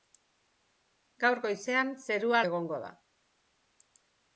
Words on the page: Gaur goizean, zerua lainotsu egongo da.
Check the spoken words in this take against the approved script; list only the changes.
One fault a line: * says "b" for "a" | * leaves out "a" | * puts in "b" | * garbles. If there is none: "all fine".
* leaves out "lainotsu"